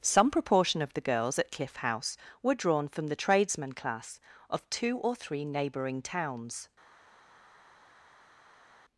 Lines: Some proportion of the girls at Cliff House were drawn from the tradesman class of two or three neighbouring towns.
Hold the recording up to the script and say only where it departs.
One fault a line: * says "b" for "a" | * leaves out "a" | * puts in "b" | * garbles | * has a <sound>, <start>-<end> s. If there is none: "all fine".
all fine